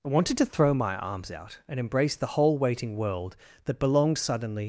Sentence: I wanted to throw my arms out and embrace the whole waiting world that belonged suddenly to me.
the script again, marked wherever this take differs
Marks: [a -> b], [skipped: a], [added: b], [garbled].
I wanted to throw my arms out and embrace the whole waiting world that belonged suddenly [skipped: to me.]